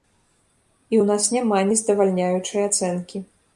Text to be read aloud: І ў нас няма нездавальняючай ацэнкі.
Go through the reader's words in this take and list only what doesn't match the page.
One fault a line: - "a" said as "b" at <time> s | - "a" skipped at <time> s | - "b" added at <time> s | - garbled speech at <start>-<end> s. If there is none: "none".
none